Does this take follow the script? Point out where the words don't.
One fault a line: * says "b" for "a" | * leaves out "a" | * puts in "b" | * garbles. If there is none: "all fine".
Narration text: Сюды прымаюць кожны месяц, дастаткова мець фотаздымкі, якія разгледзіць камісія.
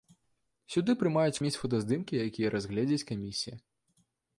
* leaves out "кожны месяц дастаткова"